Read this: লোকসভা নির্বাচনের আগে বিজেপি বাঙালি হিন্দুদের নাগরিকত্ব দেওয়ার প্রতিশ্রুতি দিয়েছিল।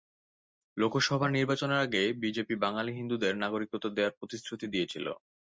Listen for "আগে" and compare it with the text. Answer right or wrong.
right